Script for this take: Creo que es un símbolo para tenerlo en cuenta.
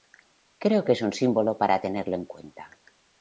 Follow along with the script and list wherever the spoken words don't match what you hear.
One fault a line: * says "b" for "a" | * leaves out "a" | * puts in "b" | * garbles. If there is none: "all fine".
all fine